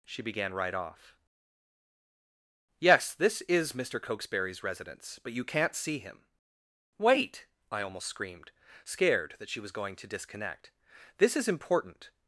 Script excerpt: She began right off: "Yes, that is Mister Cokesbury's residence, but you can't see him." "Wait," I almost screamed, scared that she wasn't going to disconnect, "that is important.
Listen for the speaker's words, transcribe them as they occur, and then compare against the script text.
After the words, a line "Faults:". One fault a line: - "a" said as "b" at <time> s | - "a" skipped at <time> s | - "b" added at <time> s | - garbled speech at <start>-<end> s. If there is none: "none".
She began right off: "Yes, this is Mister Cokesbury's residence, but you can't see him." "Wait," I almost screamed, scared that she was going to disconnect, "this is important.
Faults:
- "that" said as "this" at 3.1 s
- "wasn't" said as "was" at 9.6 s
- "that" said as "this" at 11.2 s